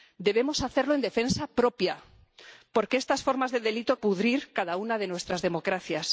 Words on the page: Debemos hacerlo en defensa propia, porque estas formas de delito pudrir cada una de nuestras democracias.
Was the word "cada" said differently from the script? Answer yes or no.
no